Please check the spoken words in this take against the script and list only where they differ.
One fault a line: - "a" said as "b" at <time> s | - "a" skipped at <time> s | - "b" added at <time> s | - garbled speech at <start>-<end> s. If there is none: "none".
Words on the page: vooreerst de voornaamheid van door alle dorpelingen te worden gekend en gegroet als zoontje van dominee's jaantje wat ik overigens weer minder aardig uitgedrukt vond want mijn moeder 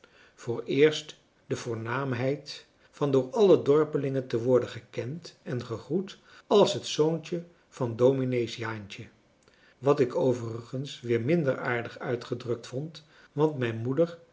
- "het" added at 6.7 s